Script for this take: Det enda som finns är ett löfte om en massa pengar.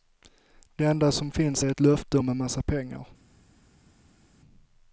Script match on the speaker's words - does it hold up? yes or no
yes